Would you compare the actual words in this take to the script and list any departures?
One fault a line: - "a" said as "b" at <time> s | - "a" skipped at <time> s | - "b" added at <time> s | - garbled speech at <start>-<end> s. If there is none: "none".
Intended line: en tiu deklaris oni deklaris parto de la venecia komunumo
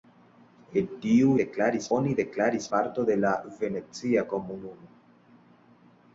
none